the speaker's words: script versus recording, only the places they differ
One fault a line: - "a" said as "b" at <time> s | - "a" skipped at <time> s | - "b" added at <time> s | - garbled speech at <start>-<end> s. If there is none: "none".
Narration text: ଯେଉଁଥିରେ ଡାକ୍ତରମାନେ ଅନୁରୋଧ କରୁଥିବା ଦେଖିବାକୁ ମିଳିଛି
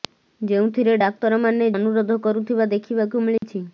none